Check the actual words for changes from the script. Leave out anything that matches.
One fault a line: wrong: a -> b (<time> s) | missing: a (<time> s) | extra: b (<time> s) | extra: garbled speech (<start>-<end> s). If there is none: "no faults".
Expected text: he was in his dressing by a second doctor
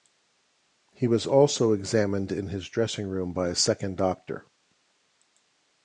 extra: also examined (1.3 s)
extra: room (3.1 s)